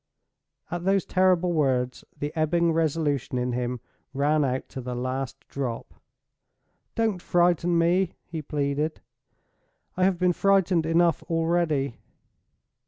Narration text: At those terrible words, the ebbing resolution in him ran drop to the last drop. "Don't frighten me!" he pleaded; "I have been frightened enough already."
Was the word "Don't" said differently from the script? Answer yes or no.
no